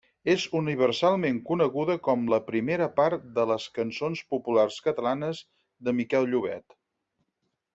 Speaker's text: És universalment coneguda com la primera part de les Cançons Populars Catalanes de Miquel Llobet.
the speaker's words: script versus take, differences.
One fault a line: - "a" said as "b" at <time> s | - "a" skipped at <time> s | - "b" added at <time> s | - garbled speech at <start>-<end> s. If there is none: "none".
none